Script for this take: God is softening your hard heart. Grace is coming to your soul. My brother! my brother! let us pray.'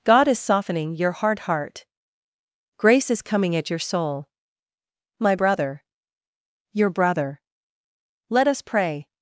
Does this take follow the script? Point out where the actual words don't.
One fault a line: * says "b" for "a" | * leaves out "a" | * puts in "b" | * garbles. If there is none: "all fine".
* says "at" for "to"
* says "your" for "my"